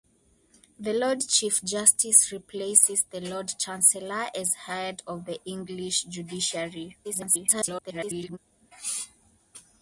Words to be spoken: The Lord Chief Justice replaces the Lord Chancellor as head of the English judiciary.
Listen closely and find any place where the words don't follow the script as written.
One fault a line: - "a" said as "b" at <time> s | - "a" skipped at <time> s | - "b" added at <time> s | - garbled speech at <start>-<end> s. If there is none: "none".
- garbled speech at 7.0-8.4 s